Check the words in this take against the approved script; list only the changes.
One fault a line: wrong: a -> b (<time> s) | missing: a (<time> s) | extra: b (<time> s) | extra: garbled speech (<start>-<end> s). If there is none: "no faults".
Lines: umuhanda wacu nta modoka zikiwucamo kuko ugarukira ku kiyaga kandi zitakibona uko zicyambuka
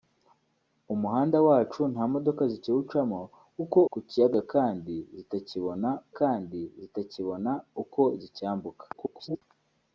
missing: ugarukira (3.8 s)
extra: kandi zitakibona (6.2 s)
extra: garbled speech (8.9-9.4 s)